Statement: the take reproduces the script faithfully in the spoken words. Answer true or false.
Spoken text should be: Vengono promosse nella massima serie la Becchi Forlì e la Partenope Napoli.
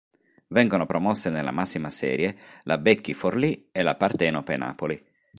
true